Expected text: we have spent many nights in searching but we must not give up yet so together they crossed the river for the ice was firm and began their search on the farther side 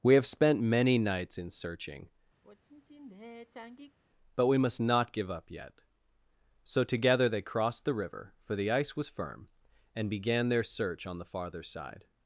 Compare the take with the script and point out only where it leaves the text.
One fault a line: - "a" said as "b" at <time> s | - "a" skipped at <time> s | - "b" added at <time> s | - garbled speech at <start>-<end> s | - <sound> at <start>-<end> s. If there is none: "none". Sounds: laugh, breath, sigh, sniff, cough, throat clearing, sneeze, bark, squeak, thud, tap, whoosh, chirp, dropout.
- sigh at 2.4-4.0 s